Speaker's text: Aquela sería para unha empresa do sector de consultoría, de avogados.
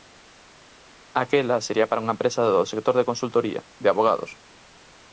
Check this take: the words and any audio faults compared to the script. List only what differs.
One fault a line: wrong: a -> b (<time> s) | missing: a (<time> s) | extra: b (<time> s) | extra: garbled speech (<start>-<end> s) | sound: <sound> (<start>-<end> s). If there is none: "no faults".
no faults